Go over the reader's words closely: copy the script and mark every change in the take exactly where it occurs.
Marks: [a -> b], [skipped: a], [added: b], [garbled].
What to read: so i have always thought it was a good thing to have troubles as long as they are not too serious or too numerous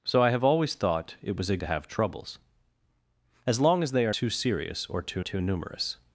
so i have always thought it was a [skipped: good thing] to have troubles as long as they are [skipped: not] too serious or too [added: too] numerous